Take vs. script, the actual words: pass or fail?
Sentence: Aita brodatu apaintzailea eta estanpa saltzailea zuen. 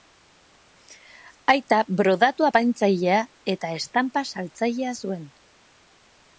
pass